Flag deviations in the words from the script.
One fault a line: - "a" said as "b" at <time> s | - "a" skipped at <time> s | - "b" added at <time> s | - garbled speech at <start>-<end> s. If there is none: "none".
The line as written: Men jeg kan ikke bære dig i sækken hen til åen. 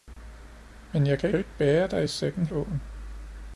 - "kan" added at 1.3 s
- "hen til" skipped at 2.5 s